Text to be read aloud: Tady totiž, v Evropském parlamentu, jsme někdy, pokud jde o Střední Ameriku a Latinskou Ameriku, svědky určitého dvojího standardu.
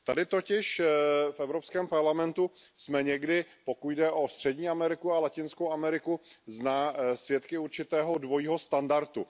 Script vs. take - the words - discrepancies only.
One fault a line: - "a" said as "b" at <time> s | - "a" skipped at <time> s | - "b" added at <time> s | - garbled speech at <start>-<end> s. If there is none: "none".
none